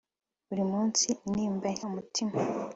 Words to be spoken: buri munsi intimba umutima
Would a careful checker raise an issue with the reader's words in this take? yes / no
no